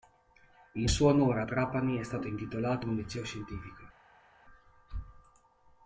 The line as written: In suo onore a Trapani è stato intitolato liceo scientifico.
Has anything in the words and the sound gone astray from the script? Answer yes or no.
yes